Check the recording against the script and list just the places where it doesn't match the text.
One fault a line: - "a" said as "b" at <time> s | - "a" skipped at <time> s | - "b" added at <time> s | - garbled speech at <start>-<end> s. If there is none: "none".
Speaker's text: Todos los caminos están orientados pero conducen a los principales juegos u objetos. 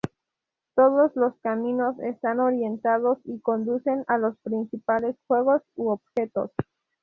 - "pero" said as "y" at 3.2 s